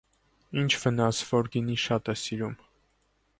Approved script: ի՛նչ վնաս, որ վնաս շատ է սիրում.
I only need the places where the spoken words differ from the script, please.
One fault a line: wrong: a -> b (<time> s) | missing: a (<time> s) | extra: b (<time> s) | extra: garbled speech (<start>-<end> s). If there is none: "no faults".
wrong: վնաս -> գինի (1.6 s)